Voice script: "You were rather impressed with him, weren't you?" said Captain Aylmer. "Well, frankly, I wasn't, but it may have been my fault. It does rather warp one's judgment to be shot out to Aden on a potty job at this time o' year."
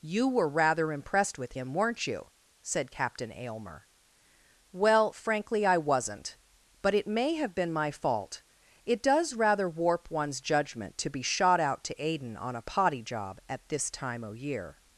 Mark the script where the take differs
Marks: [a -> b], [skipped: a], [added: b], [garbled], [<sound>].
"You were rather impressed with him, weren't you?" said Captain Aylmer. "Well, frankly, I wasn't, but it may have been my fault. It does rather warp one's judgment to be shot out to Aden on a potty job at this time o' year."